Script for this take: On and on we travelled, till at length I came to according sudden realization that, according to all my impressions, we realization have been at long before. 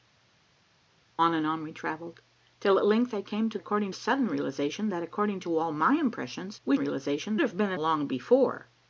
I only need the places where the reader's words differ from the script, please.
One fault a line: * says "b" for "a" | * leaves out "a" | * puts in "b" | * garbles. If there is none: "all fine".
all fine